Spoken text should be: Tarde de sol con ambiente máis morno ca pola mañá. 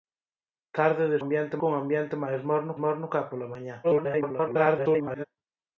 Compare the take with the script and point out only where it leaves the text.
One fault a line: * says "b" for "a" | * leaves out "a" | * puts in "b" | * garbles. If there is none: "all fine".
* says "ambiente" for "sol"
* puts in "morno"
* garbles